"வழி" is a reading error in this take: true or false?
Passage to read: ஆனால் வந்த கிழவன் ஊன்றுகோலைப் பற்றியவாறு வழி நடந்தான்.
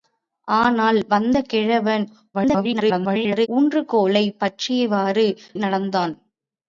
true